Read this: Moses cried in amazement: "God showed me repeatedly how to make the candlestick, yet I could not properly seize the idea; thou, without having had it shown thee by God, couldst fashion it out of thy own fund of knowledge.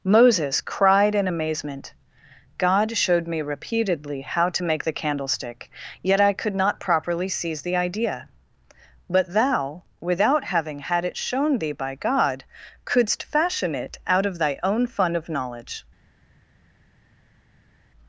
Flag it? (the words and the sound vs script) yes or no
yes